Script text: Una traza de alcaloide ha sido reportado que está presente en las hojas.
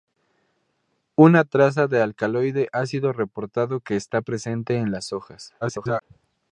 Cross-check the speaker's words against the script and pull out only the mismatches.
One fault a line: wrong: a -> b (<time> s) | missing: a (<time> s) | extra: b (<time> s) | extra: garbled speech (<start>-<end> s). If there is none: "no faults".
extra: garbled speech (5.6-6.0 s)